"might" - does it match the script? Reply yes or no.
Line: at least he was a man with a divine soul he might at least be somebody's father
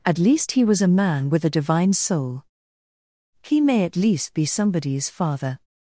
no